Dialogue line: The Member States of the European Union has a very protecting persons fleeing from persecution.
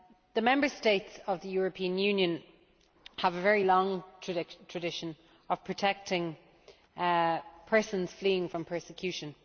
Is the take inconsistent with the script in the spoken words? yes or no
yes